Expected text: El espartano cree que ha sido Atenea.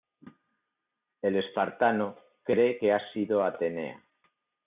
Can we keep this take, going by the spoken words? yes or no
yes